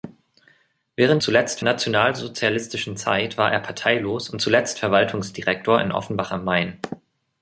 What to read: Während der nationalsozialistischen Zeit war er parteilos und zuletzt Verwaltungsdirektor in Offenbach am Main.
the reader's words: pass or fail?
fail